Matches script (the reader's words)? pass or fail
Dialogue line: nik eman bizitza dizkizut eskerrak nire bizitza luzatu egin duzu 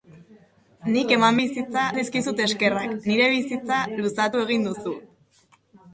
pass